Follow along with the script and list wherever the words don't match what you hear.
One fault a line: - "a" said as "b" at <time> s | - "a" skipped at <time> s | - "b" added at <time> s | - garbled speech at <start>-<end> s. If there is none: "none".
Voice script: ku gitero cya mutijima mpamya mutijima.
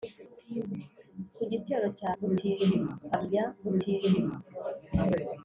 none